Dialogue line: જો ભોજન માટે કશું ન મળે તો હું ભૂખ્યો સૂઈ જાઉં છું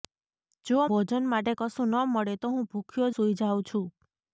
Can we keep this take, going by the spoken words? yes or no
yes